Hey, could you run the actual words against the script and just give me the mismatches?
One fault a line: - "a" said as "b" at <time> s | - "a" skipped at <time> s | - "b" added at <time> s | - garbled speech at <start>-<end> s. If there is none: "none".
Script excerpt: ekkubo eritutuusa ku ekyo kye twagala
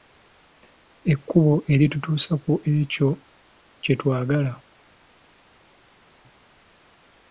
none